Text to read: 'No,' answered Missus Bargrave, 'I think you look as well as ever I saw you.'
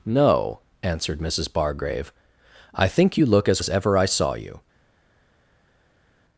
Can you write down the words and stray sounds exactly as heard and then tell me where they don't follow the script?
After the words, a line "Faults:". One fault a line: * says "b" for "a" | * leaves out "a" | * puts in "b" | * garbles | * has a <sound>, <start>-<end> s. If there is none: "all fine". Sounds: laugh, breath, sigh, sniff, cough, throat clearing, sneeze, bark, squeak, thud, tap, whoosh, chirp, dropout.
'No,' answered Missus Bargrave, 'I think you look as as ever I saw you.'
Faults:
* leaves out "well"